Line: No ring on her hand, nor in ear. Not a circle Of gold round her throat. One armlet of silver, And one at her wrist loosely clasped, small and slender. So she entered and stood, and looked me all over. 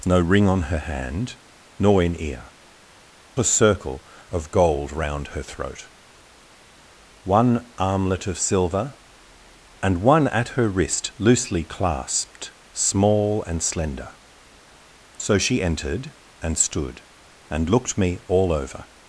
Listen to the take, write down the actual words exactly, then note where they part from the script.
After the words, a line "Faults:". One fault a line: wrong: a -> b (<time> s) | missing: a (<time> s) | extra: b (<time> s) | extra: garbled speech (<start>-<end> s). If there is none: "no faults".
No ring on her hand, nor in ear. A circle Of gold round her throat. One armlet of silver, And one at her wrist loosely clasped, small and slender. So she entered and stood, and looked me all over.
Faults:
missing: Not (2.5 s)